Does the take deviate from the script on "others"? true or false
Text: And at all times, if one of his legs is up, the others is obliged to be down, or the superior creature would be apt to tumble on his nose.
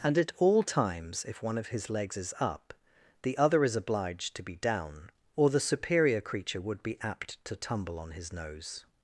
true